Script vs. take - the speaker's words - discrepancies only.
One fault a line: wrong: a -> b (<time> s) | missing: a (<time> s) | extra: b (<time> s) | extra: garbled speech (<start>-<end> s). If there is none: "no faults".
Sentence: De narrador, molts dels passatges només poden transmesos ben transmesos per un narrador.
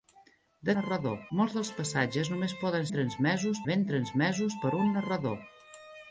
no faults